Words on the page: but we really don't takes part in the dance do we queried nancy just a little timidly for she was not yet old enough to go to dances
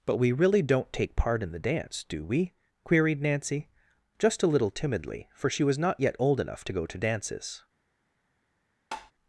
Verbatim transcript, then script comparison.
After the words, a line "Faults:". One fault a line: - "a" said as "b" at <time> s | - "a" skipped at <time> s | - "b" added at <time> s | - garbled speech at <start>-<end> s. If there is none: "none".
but we really don't take part in the dance do we queried nancy just a little timidly for she was not yet old enough to go to dances
Faults:
- "takes" said as "take" at 0.9 s